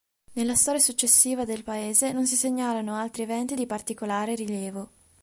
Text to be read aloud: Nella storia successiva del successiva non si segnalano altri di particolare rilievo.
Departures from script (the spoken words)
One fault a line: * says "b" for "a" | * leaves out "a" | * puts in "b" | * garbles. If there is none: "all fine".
* says "paese" for "successiva"
* puts in "eventi"